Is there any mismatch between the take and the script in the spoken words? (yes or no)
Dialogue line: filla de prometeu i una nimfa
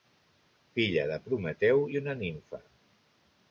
no